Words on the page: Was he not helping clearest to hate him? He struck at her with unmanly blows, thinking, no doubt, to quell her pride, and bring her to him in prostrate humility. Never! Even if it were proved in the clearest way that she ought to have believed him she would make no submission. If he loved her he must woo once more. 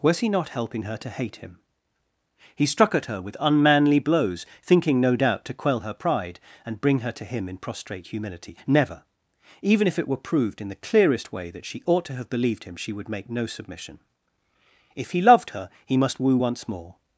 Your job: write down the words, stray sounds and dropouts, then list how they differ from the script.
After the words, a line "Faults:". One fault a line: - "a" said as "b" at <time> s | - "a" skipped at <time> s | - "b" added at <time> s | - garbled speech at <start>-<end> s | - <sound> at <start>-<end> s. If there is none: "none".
Was he not helping her to hate him? He struck at her with unmanly blows, thinking, no doubt, to quell her pride, and bring her to him in prostrate humility. Never! Even if it were proved in the clearest way that she ought to have believed him she would make no submission. If he loved her he must woo once more.
Faults:
- "clearest" said as "her" at 0.8 s